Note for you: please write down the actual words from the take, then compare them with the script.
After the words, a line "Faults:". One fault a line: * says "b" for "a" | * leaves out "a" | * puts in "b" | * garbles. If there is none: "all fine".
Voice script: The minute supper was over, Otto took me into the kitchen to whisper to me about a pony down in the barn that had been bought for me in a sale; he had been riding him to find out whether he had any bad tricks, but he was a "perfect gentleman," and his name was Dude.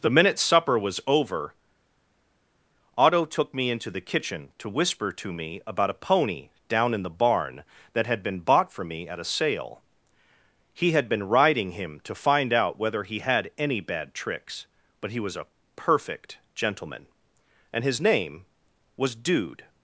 The minute supper was over, Otto took me into the kitchen to whisper to me about a pony down in the barn that had been bought for me at a sale; he had been riding him to find out whether he had any bad tricks, but he was a "perfect gentleman," and his name was Dude.
Faults:
* says "at" for "in"